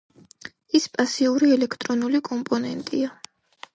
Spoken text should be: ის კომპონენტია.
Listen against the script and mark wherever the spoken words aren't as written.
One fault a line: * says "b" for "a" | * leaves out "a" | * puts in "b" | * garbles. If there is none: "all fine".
* puts in "პასიური ელექტრონული"